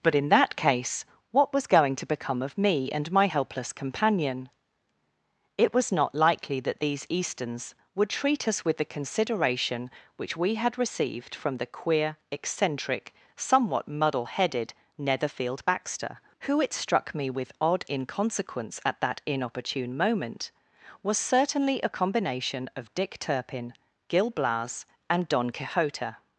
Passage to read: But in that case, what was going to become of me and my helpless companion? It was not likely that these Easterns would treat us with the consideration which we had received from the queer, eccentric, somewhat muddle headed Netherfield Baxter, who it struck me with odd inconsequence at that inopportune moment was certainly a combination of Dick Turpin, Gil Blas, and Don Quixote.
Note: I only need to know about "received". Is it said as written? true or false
true